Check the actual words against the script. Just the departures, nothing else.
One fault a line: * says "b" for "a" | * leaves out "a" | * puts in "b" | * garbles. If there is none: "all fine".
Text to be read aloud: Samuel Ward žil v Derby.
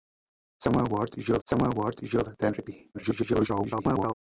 * puts in "samuel Ward žil"
* garbles